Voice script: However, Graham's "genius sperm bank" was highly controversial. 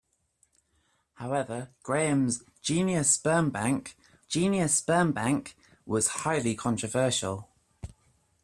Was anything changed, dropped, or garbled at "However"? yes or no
no